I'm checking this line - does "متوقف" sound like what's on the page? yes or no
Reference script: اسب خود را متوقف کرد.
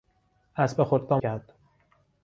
no